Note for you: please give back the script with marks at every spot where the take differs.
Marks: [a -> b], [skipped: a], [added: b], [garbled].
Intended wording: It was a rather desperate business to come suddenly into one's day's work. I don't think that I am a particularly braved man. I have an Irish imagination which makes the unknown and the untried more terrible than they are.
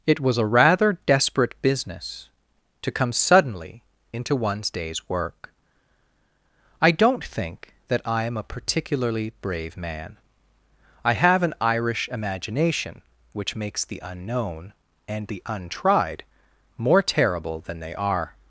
It was a rather desperate business to come suddenly into one's day's work. I don't think that I am a particularly [braved -> brave] man. I have an Irish imagination which makes the unknown and the untried more terrible than they are.